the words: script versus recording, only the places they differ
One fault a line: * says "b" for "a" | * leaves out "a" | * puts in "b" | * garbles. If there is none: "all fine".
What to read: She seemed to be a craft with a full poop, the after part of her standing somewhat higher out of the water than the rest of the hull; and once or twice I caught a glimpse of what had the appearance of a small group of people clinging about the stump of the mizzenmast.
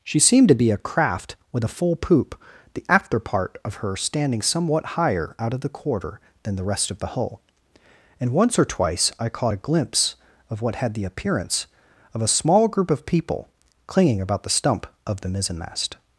* says "quarter" for "water"